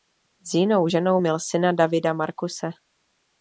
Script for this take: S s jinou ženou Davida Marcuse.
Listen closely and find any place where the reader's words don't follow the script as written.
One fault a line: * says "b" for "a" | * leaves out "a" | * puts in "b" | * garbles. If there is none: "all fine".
* leaves out "s"
* puts in "měl syna"